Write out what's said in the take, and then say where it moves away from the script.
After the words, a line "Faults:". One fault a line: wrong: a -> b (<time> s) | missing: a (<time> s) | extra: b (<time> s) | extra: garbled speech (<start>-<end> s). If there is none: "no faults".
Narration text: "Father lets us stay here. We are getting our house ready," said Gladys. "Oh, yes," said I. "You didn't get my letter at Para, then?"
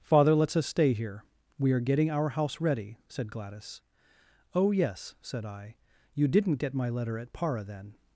"Father lets us stay here. We are getting our house ready," said Gladys. "Oh, yes," said I. "You didn't get my letter at Para, then?"
Faults:
no faults